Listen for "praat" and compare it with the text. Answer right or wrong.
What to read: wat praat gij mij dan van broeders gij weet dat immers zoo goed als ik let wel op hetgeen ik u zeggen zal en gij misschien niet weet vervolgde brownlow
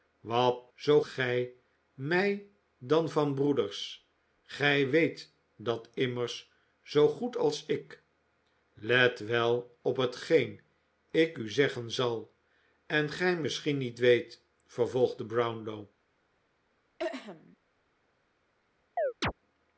wrong